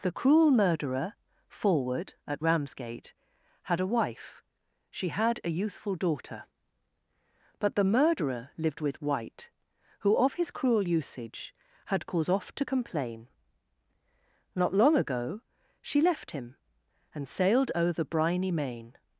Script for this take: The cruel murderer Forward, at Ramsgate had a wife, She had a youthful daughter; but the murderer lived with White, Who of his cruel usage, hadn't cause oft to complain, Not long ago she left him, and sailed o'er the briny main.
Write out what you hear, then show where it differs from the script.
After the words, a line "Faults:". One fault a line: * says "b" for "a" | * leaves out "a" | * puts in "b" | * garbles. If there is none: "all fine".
The cruel murderer Forward, at Ramsgate had a wife, She had a youthful daughter; but the murderer lived with White, Who of his cruel usage, had cause oft to complain, Not long ago she left him, and sailed o'er the briny main.
Faults:
* says "had" for "hadn't"